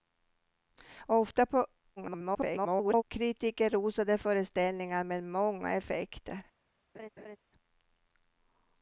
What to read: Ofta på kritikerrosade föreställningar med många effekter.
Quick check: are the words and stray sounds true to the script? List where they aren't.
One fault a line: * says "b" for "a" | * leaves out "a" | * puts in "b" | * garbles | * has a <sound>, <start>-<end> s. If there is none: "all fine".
* garbles
* has a laugh, 6.9-7.4 s